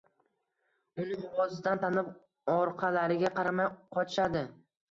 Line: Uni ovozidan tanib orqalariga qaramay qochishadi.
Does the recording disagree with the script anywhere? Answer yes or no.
no